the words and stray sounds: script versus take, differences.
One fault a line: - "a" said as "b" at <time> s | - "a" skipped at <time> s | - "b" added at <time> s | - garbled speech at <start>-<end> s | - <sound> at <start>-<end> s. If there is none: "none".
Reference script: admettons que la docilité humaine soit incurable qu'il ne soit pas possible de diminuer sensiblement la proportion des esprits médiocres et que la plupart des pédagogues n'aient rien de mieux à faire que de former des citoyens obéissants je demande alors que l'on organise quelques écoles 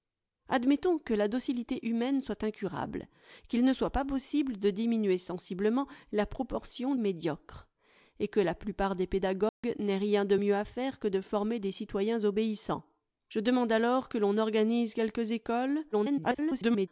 - "des esprits" skipped at 7.0 s
- dropout at 9.5-9.6 s
- garbled speech at 15.9-16.9 s